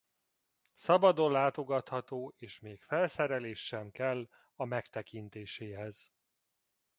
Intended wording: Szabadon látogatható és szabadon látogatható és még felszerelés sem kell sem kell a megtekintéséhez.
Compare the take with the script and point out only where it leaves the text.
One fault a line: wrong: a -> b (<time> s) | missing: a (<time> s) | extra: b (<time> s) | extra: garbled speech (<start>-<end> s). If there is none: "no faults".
missing: szabadon látogatható és (2.6 s)
missing: sem kell (4.3 s)